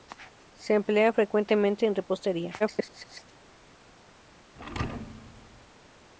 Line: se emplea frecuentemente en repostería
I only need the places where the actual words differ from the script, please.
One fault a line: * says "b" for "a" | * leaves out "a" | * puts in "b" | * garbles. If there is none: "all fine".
* garbles